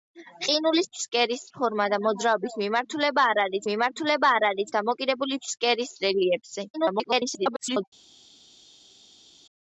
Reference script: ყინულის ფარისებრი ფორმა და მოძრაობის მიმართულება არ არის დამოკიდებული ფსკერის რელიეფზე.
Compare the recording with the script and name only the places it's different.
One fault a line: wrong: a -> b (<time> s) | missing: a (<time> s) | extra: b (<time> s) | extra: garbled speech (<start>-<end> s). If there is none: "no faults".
wrong: ფარისებრი -> ფსკერის (1.0 s)
extra: მიმართულება არ არის (3.7 s)
extra: garbled speech (6.7-7.8 s)